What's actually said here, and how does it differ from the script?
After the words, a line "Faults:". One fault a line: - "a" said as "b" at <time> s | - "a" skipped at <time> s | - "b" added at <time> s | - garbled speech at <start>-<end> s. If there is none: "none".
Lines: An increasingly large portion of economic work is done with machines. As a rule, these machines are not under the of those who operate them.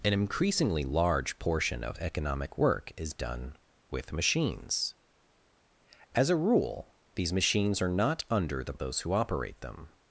An increasingly large portion of economic work is done with machines. As a rule, these machines are not under the of those who operate them.
Faults:
none